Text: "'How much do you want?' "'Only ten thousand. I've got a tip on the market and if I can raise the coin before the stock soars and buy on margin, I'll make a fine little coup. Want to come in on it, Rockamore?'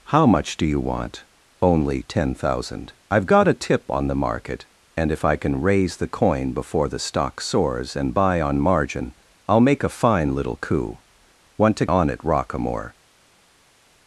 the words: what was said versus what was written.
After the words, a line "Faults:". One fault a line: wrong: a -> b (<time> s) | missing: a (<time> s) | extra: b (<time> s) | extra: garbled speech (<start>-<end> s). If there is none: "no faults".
"'How much do you want?' "'Only ten thousand. I've got a tip on the market and if I can raise the coin before the stock soars and buy on margin, I'll make a fine little coup. Want to on it, Rockamore?'
Faults:
missing: come in (11.9 s)